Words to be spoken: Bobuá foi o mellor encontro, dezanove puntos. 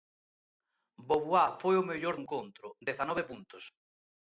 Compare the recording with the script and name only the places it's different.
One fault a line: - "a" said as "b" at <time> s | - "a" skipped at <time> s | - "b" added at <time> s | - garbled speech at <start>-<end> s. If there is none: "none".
none